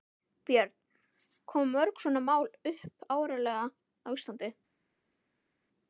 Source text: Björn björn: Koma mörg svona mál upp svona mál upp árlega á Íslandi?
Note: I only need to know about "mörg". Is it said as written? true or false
true